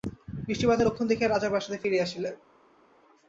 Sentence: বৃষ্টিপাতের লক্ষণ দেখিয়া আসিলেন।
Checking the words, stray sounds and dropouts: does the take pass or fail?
fail